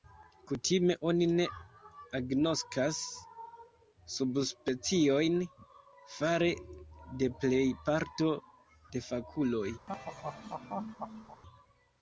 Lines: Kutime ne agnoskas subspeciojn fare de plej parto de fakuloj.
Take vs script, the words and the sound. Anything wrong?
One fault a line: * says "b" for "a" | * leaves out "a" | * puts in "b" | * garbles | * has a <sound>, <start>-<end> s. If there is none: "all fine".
* puts in "oni"
* has a laugh, 9.9-11.4 s